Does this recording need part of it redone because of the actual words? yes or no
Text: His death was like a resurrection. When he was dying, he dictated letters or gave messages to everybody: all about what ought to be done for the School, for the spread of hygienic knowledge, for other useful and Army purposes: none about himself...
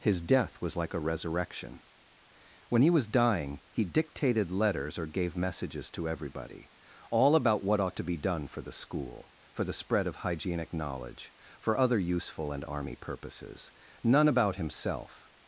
no